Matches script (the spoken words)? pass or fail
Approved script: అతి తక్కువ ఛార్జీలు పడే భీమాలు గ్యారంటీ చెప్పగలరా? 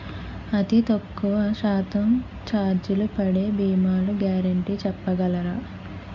fail